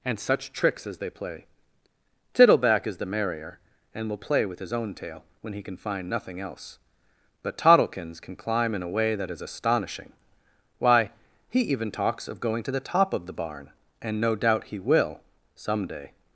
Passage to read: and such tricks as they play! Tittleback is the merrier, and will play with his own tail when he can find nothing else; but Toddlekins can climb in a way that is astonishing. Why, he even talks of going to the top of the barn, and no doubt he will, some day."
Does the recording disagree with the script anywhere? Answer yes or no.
no